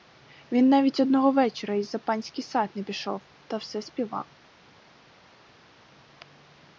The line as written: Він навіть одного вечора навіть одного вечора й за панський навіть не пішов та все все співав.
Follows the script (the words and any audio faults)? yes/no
no